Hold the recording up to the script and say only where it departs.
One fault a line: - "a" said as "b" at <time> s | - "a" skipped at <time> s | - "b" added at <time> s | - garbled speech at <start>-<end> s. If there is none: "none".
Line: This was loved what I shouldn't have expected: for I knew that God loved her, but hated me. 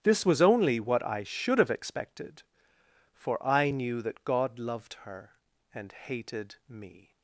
- "loved" said as "only" at 0.4 s
- "shouldn't" said as "should" at 1.2 s
- "but" said as "and" at 5.7 s